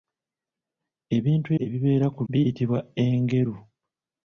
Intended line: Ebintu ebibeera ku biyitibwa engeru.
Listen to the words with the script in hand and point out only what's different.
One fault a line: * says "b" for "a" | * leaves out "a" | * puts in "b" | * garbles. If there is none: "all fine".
all fine